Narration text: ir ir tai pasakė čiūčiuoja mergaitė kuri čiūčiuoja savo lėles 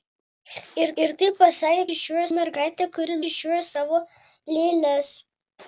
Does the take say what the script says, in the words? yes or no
yes